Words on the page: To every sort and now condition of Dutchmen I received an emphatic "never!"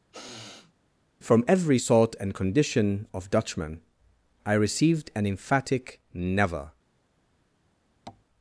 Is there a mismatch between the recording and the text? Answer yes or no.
yes